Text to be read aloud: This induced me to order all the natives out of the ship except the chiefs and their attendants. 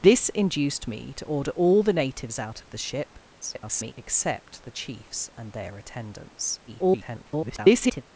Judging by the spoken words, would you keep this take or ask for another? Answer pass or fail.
fail